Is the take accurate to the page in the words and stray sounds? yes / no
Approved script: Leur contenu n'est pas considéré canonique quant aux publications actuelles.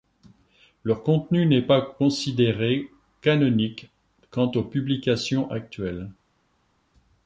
yes